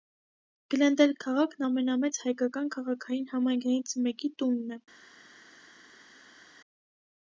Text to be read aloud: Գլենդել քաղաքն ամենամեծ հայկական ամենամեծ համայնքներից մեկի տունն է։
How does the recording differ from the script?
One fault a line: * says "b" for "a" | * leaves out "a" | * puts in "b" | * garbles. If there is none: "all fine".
* says "քաղաքային" for "ամենամեծ"